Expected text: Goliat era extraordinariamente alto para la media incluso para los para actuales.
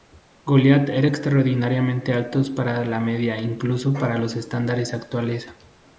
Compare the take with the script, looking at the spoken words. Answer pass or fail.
fail